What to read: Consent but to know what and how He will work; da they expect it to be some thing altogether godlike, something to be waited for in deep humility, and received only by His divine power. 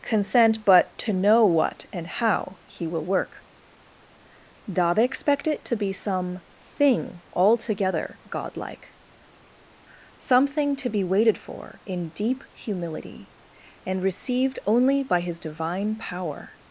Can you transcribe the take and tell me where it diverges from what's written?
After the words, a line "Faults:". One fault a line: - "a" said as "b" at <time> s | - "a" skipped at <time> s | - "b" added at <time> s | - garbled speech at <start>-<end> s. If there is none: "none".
Consent but to know what and how He will work; da they expect it to be some thing altogether godlike, something to be waited for in deep humility, and received only by His divine power.
Faults:
none